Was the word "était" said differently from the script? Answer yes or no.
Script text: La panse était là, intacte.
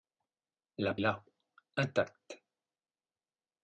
yes